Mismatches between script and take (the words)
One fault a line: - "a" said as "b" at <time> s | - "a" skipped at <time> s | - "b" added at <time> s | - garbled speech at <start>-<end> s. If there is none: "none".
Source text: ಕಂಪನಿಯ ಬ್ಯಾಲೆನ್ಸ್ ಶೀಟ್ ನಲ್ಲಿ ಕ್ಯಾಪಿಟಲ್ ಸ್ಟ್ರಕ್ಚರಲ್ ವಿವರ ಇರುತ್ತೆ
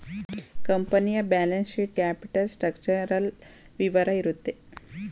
- "ನಲ್ಲಿ" skipped at 2.0 s